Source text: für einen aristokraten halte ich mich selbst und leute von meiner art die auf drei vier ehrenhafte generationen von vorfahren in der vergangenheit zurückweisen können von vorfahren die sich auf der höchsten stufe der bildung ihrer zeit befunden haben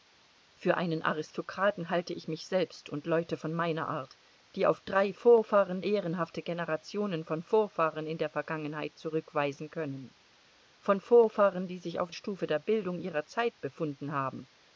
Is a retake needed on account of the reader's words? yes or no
yes